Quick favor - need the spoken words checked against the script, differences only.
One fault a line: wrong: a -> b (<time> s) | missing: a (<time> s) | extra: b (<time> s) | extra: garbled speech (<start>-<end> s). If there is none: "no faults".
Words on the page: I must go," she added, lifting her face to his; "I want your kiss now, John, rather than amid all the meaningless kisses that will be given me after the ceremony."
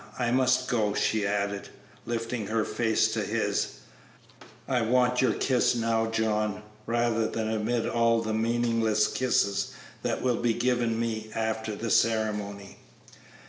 no faults